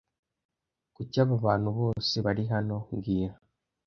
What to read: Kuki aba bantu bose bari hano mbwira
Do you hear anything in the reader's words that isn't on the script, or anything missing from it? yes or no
no